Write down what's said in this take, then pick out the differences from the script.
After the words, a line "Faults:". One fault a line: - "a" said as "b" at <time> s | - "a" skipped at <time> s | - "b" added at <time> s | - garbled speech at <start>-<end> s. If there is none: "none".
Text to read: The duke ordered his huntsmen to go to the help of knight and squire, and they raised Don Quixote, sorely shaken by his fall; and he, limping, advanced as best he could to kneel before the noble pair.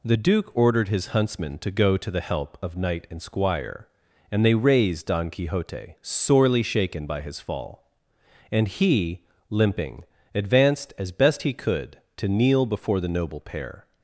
The duke ordered his huntsmen to go to the help of knight and squire, and they raised Don Quixote, sorely shaken by his fall; and he, limping, advanced as best he could to kneel before the noble pair.
Faults:
none